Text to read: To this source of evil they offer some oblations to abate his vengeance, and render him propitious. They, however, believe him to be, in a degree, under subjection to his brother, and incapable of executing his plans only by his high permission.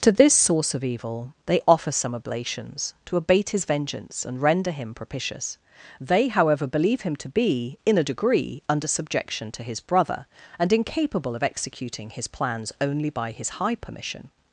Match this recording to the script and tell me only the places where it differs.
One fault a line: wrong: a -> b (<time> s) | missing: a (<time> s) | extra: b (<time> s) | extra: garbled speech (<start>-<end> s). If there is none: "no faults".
no faults